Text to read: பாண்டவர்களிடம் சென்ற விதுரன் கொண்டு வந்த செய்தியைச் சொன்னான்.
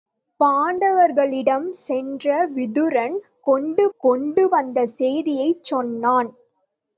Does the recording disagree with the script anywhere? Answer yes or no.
yes